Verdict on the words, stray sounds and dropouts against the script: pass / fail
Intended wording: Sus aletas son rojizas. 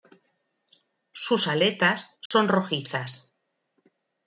fail